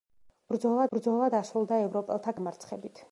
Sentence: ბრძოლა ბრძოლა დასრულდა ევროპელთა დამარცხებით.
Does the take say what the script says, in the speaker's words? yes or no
yes